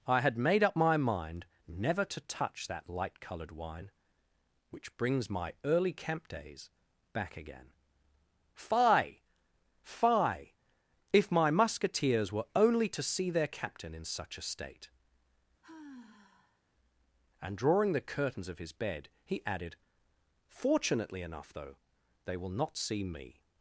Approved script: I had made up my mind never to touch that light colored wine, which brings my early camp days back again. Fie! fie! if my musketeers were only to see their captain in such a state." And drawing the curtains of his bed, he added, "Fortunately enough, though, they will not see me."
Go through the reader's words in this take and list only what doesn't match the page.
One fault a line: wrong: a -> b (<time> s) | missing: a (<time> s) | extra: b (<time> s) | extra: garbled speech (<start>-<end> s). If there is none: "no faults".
no faults